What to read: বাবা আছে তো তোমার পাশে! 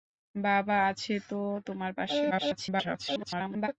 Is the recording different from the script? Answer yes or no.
yes